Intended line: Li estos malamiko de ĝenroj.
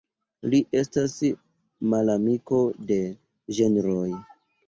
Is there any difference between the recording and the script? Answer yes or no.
yes